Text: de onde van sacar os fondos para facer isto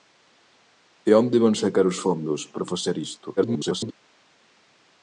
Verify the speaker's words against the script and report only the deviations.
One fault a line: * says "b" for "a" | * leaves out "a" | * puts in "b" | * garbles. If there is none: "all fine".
* garbles